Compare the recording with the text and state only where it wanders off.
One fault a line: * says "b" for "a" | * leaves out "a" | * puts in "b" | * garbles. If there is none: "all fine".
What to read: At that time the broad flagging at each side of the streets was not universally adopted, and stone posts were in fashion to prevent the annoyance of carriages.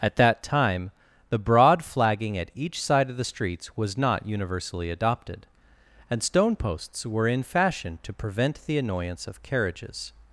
all fine